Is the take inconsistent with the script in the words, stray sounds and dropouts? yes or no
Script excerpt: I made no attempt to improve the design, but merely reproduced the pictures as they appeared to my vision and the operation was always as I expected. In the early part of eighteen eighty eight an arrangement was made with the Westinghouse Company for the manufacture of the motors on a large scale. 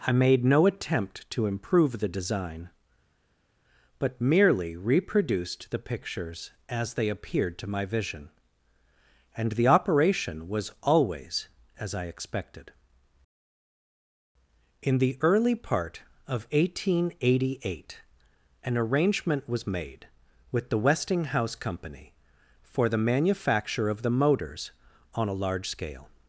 no